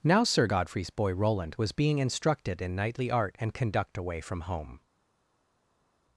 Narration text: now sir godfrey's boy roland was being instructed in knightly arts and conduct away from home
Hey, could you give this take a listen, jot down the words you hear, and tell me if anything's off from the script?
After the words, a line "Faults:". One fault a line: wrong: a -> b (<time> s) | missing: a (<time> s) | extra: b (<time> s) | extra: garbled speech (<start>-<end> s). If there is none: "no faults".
now sir godfrey's boy roland was being instructed in knightly art and conduct away from home
Faults:
wrong: arts -> art (3.1 s)